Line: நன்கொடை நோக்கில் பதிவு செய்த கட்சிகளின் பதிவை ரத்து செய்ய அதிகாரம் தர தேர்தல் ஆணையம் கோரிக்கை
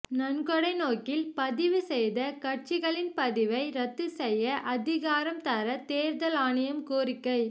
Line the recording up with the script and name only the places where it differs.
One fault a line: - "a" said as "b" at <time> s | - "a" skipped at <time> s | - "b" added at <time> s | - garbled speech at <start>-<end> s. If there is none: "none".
none